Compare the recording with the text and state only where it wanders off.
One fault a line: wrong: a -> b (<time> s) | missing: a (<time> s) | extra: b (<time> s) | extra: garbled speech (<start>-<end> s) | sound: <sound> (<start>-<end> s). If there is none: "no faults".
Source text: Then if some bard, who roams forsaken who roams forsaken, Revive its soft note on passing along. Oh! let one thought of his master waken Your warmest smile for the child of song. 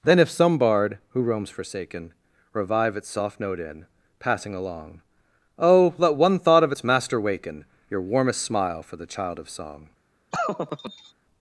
missing: who roams forsaken (2.1 s)
wrong: on -> in (3.6 s)
wrong: his -> its (6.7 s)
sound: laugh (10.3-11.1 s)